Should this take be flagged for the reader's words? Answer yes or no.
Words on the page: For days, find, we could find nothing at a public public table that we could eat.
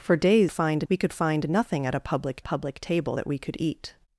no